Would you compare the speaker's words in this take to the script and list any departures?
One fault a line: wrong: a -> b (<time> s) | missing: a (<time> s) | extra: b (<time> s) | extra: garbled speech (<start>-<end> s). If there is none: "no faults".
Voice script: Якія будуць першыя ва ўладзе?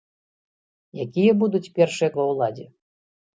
no faults